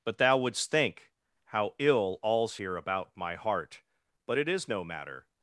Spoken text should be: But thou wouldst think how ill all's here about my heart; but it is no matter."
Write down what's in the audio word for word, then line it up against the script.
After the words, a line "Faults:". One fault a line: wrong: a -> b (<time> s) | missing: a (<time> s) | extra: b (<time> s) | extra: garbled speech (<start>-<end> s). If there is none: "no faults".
But thou wouldst think how ill all's here about my heart; but it is no matter."
Faults:
no faults